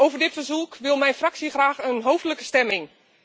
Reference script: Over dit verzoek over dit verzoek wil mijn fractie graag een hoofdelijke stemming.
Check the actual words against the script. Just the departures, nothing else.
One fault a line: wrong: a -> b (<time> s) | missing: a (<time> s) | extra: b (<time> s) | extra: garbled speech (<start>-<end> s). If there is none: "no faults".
missing: over dit verzoek (0.8 s)